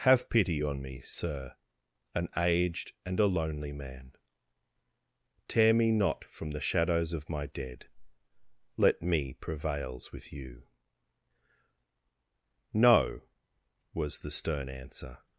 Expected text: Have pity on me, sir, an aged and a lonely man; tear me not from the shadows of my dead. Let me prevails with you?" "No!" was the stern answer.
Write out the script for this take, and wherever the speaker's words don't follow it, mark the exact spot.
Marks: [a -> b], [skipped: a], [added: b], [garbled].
Have pity on me, sir, an aged and a lonely man; tear me not from the shadows of my dead. Let me prevails with you?" "No!" was the stern answer.